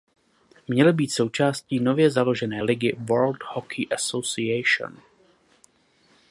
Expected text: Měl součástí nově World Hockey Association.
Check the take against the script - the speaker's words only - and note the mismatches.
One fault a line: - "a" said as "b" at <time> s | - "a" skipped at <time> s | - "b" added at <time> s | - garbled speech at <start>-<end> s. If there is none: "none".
- "být" added at 0.9 s
- "založené ligy" added at 2.1 s